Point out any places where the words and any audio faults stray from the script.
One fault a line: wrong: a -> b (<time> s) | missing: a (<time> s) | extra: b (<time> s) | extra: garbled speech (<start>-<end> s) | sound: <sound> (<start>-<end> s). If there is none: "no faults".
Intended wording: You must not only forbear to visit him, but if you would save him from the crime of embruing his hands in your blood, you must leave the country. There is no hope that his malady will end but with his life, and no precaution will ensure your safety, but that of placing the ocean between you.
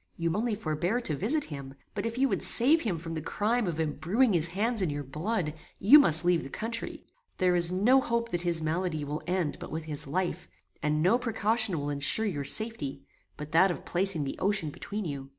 missing: must not (0.3 s)